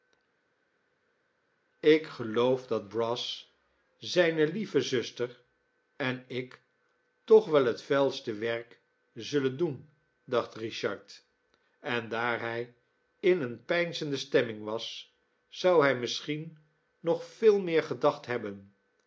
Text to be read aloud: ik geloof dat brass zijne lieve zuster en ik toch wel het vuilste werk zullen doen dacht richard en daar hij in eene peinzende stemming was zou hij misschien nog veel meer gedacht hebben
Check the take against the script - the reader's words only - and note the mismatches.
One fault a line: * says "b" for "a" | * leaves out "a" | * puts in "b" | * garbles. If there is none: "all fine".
all fine